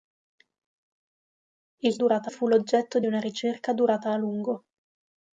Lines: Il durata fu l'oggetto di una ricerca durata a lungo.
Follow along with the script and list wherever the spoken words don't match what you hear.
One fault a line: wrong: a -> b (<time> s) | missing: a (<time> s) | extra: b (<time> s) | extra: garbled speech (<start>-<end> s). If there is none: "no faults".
no faults